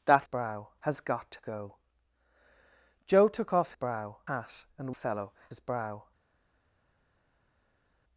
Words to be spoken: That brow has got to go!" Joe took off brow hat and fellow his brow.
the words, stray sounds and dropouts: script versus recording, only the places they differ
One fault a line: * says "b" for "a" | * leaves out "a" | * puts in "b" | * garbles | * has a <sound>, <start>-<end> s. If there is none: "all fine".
all fine